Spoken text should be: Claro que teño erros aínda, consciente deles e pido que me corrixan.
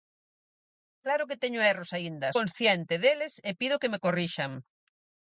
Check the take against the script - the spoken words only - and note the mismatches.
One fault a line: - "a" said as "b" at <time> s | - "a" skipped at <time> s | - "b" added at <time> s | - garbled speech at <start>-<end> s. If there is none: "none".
none